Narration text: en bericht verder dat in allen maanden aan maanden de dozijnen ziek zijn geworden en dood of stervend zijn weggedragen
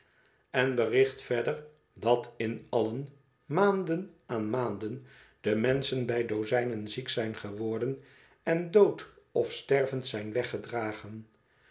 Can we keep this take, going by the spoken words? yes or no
no